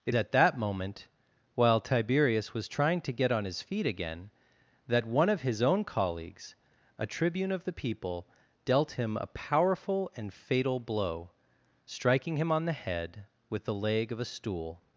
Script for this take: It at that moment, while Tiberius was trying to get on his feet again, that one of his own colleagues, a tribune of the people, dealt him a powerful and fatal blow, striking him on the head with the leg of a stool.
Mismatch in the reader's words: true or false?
false